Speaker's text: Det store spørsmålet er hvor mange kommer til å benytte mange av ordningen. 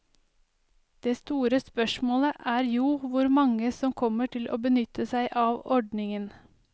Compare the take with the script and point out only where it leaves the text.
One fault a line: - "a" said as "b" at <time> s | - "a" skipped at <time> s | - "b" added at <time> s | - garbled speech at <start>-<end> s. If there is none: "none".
- "jo" added at 2.6 s
- "som" added at 3.8 s
- "mange" said as "seg" at 5.1 s